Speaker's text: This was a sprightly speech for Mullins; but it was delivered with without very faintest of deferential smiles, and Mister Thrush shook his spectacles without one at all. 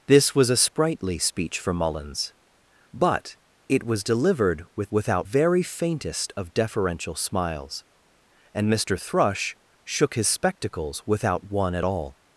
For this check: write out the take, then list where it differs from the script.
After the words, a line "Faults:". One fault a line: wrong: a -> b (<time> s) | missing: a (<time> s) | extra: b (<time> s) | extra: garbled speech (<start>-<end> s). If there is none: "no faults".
This was a sprightly speech for Mullins; but it was delivered with without very faintest of deferential smiles, and Mister Thrush shook his spectacles without one at all.
Faults:
no faults